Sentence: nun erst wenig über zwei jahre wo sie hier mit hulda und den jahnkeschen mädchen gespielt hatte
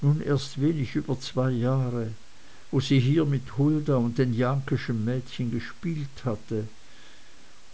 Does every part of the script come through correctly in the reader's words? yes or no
yes